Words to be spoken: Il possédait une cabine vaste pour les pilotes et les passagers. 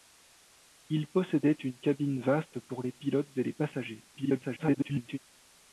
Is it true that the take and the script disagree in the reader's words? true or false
true